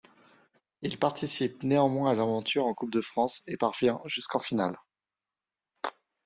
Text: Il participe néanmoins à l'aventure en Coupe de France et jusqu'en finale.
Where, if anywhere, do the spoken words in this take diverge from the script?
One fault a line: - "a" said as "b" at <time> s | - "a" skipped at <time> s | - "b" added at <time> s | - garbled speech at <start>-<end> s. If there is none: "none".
- "parvient" added at 3.5 s